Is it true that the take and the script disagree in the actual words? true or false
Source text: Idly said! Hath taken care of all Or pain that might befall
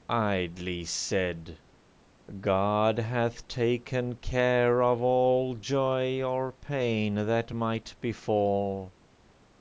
true